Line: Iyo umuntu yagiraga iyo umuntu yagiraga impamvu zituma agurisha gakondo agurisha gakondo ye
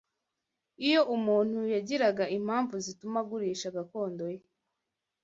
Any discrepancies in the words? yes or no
yes